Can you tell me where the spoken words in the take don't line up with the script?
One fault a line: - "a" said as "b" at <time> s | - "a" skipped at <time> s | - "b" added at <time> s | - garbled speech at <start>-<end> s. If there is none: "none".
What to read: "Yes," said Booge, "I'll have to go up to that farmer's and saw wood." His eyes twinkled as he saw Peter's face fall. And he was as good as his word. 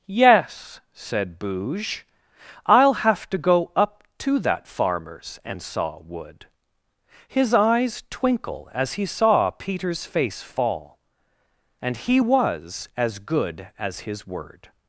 - "twinkled" said as "twinkle" at 8.1 s